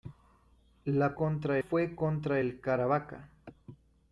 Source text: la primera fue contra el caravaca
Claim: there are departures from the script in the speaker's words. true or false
true